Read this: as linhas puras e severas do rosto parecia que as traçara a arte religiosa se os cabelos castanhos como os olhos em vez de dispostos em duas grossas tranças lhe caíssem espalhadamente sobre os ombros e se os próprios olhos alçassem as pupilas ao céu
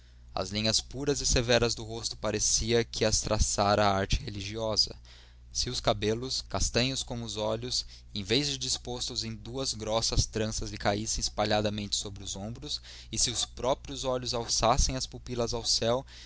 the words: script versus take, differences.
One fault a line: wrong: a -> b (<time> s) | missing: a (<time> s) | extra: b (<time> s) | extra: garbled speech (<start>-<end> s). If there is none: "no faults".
no faults